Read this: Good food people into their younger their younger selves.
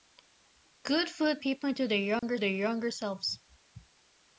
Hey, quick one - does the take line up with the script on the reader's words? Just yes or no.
yes